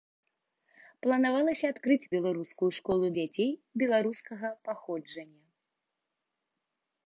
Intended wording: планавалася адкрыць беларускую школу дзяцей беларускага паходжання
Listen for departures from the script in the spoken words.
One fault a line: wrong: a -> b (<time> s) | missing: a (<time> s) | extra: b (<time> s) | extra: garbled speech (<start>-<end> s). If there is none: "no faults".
no faults